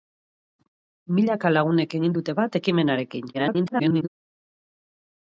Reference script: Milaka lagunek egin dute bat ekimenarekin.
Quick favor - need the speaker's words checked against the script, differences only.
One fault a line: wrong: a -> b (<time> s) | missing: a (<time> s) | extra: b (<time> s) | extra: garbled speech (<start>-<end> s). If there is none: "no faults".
extra: garbled speech (3.3-4.1 s)